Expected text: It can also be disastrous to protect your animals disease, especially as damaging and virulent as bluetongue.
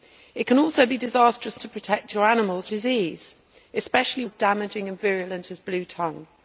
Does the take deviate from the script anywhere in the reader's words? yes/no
no